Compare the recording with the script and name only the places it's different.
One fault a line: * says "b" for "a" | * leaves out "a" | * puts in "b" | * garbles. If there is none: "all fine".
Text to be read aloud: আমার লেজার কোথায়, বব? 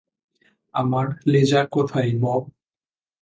all fine